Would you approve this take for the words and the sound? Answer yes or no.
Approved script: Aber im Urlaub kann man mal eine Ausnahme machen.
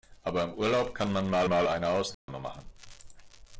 no